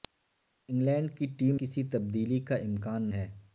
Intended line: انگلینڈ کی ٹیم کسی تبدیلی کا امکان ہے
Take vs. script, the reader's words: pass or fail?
pass